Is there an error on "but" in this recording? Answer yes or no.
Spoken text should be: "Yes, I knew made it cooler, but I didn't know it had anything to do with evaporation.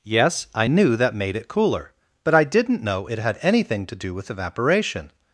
no